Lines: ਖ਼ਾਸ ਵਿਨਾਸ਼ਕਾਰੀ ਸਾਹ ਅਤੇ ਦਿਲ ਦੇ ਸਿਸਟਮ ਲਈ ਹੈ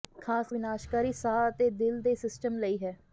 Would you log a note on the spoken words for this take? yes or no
no